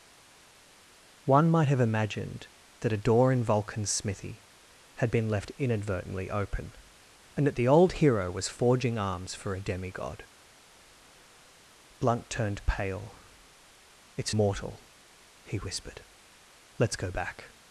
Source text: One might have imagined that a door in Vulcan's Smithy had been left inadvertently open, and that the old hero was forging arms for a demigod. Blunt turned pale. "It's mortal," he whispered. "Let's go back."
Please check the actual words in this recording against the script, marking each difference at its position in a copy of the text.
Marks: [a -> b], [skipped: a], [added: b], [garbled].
One might have imagined that a door in Vulcan's Smithy had been left inadvertently open, and that the old hero was forging arms for a demigod. Blunt turned pale. "It's mortal," he whispered. "Let's go back."